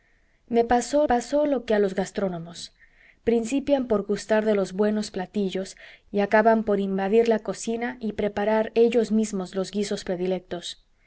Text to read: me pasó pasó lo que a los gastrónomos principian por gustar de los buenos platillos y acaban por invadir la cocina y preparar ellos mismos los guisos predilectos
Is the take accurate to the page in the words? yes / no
yes